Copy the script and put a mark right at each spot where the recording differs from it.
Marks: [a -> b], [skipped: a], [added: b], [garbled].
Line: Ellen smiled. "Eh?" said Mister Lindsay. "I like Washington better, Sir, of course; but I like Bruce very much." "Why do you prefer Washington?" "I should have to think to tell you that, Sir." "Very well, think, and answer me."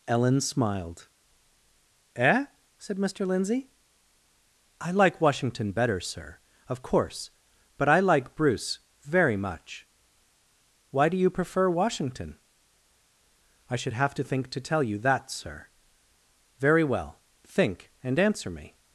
Ellen smiled. "Eh?" said Mister Lindsay. "I like Washington better, Sir, of course; but I like Bruce very much." "Why do you prefer Washington?" "I should have to think to tell you that, Sir." "Very well, think, and answer me."